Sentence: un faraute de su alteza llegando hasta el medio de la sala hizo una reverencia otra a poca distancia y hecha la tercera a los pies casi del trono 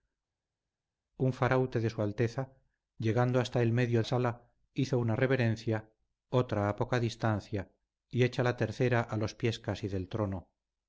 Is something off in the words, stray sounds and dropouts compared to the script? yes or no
yes